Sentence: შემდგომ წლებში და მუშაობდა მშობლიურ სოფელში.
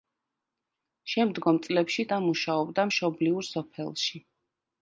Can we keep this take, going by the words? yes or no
yes